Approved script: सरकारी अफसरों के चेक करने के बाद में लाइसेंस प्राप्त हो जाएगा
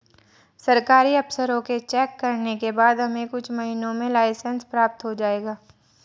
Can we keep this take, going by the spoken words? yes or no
no